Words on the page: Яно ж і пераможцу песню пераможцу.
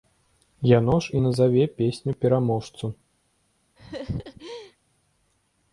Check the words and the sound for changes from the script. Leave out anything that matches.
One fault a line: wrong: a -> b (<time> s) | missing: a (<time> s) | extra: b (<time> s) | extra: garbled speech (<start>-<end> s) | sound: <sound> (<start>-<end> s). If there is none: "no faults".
wrong: пераможцу -> назаве (1.2 s)
sound: laugh (3.8-4.8 s)